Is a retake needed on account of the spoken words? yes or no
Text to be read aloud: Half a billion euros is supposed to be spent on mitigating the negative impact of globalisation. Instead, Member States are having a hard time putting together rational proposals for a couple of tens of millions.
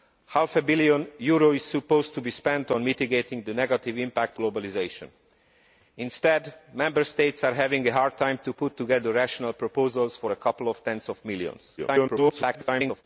yes